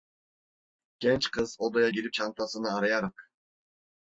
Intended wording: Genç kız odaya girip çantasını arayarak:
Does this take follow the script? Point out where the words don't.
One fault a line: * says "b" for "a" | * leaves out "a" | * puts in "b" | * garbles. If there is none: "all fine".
all fine